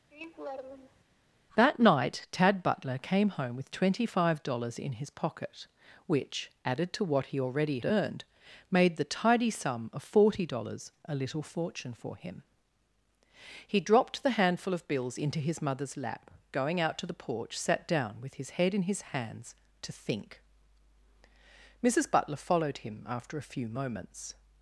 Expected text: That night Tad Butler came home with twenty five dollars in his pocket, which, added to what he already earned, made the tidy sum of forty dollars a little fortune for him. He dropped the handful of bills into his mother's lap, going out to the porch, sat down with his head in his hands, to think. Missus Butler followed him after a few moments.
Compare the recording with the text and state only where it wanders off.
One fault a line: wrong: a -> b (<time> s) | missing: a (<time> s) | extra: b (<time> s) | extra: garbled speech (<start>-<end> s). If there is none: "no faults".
no faults